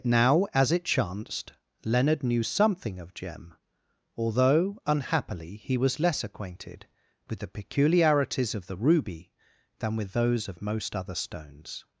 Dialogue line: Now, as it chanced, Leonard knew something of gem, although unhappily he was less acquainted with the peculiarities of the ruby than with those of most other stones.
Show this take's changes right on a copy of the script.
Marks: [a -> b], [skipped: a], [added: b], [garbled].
Now, as it chanced, Leonard knew something of gem, although unhappily he was less acquainted with the peculiarities of the ruby than with those of most other stones.